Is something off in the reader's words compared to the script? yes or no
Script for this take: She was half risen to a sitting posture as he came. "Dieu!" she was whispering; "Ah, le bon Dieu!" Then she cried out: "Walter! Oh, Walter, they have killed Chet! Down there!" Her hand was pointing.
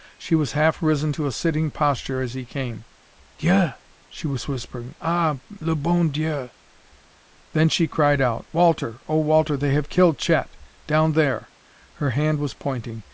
no